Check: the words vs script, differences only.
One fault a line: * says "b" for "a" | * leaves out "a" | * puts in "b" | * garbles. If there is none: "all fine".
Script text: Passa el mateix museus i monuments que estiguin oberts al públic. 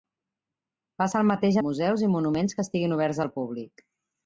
all fine